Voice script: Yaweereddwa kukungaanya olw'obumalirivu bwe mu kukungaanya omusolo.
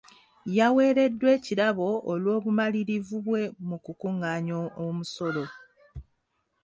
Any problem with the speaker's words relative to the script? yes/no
yes